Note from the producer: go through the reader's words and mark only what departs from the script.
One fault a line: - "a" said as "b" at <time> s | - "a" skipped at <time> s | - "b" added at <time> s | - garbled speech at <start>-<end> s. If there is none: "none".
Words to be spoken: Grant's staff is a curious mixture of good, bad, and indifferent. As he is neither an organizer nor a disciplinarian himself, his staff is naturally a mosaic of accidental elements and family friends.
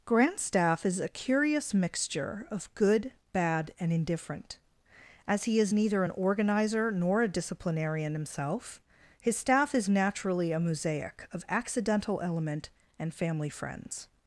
- "elements" said as "element" at 12.2 s